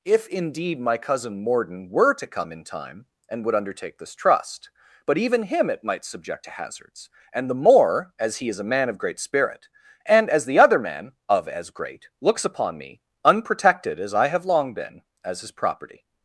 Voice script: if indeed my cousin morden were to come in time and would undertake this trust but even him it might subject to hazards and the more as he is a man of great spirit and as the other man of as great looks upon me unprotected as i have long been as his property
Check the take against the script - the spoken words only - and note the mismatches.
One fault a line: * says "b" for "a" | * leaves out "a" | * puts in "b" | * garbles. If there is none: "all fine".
all fine